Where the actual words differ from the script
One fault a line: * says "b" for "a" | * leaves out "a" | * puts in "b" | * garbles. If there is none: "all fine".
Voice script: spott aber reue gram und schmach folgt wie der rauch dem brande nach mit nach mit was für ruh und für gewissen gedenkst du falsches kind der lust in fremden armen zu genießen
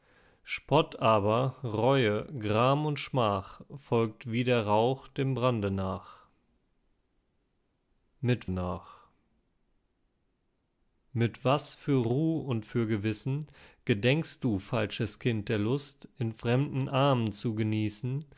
all fine